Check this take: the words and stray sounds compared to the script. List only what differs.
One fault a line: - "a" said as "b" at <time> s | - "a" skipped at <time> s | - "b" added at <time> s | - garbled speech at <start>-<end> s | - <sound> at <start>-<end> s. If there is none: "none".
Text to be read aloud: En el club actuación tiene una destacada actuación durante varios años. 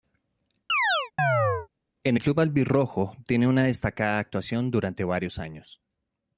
- chirp at 0.7-1.7 s
- "actuación" said as "albirrojo" at 2.4 s